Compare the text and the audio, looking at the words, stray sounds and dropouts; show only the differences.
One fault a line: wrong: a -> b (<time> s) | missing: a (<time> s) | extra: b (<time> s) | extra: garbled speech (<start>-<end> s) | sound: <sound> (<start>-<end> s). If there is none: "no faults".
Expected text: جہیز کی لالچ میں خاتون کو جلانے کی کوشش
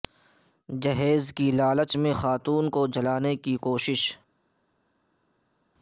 no faults